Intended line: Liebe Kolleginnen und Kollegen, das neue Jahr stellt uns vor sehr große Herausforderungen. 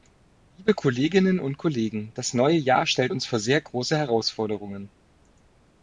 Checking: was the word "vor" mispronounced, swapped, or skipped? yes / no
no